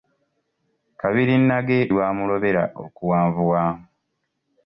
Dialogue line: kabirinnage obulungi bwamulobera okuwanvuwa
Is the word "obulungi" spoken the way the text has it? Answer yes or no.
no